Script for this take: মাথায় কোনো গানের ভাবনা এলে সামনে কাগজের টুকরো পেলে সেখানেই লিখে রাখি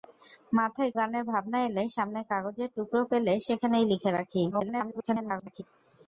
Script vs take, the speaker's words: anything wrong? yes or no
yes